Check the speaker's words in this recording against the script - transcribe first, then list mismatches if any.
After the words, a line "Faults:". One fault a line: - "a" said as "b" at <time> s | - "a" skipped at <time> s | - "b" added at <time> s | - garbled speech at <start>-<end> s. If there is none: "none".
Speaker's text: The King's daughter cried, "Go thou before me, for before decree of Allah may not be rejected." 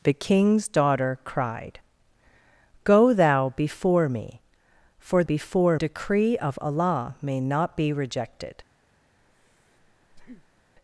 The King's daughter cried, "Go thou before me, for before decree of Allah may not be rejected."
Faults:
none